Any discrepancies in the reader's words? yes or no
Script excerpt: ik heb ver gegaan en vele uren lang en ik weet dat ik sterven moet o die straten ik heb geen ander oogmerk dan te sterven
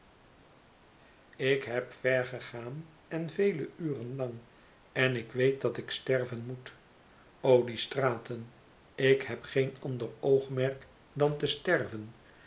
no